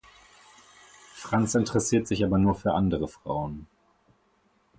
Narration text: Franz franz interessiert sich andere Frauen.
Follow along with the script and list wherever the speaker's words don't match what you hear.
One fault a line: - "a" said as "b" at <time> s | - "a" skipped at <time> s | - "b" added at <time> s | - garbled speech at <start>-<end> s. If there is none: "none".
- "franz" skipped at 1.5 s
- "aber nur für" added at 2.2 s